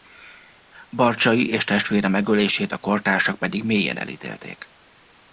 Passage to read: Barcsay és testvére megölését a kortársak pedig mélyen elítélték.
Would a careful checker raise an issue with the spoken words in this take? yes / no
no